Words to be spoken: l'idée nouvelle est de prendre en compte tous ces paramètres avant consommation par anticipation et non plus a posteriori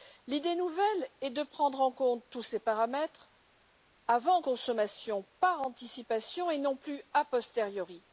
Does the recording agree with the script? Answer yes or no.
yes